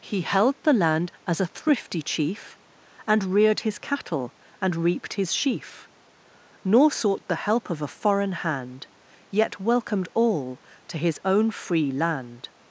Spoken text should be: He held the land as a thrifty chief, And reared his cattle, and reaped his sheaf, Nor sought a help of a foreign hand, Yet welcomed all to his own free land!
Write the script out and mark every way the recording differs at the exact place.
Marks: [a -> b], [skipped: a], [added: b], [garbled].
He held the land as a thrifty chief, And reared his cattle, and reaped his sheaf, Nor sought [a -> the] help of a foreign hand, Yet welcomed all to his own free land!